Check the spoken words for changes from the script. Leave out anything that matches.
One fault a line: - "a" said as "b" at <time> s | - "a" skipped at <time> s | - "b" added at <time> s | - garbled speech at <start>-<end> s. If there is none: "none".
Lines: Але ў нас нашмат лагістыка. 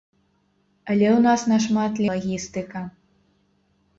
none